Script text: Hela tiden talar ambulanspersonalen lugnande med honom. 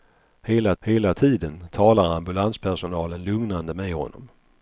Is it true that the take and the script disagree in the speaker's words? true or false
true